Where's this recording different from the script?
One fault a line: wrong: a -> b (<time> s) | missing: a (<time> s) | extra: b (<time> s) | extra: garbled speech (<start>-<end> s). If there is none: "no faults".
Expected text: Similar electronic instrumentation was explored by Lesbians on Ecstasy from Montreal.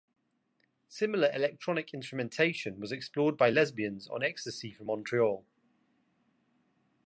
no faults